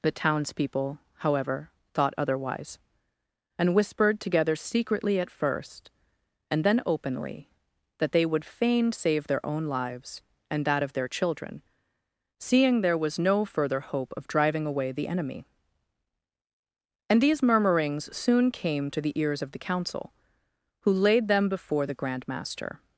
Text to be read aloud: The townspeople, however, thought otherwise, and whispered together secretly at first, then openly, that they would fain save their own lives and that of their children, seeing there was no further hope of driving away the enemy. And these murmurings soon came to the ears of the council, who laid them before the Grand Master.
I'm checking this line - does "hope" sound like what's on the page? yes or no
yes